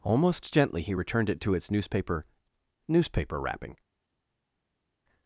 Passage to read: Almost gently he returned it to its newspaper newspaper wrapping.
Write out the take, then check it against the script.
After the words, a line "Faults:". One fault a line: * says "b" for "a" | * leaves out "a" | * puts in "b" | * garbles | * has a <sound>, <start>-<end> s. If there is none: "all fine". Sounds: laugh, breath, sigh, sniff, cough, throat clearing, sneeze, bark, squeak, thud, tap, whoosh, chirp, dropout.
Almost gently he returned it to its newspaper newspaper wrapping.
Faults:
all fine